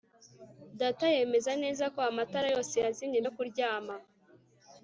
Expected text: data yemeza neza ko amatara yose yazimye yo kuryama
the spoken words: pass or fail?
pass